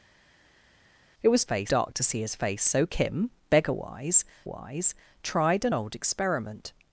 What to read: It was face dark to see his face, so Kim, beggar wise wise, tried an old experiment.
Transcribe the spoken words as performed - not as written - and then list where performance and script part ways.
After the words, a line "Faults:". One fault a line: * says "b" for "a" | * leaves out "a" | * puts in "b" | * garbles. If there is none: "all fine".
It was face dark to see his face, so Kim, beggar wise wise, tried an old experiment.
Faults:
all fine